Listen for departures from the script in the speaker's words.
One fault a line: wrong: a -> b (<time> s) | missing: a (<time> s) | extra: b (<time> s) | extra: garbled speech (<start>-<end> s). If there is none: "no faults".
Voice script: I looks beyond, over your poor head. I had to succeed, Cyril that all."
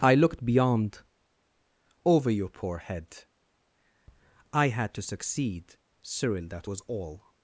wrong: looks -> looked (0.1 s)
extra: was (6.7 s)